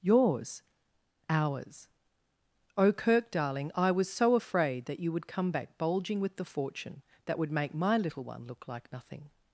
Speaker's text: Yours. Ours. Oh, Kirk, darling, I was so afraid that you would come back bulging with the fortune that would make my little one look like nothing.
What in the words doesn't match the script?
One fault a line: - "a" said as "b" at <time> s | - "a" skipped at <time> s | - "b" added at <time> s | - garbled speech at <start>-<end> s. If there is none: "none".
none